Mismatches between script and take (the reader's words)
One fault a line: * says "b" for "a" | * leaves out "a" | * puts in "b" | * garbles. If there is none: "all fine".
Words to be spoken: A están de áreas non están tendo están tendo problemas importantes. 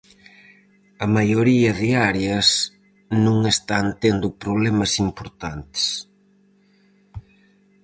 * says "maioría" for "están"
* leaves out "están tendo"